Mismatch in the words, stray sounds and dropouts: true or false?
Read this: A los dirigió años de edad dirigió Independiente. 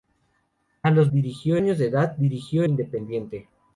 false